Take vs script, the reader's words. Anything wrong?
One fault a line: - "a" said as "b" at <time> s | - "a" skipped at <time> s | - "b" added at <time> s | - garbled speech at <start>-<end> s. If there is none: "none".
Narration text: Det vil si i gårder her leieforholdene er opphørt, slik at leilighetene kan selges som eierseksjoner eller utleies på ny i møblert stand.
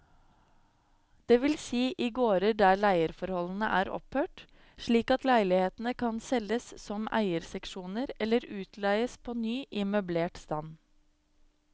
- "her" said as "der" at 2.6 s